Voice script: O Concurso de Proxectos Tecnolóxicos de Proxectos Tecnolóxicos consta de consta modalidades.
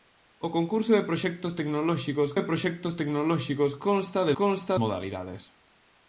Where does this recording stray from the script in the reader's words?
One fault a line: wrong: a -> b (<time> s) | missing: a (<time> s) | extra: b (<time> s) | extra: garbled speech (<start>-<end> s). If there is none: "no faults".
no faults